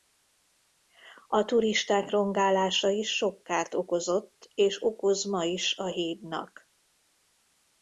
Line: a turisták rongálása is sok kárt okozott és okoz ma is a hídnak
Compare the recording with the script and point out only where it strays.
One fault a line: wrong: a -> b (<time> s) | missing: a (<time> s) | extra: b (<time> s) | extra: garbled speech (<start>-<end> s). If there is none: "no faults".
no faults